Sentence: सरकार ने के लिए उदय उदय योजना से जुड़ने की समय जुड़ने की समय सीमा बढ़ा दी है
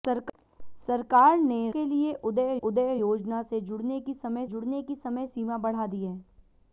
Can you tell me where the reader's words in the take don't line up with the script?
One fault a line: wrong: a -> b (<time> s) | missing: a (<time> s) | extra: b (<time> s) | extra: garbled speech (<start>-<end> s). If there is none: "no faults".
no faults